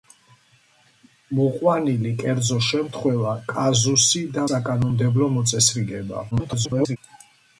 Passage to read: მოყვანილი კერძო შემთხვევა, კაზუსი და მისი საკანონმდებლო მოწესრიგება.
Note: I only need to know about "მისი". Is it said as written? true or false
false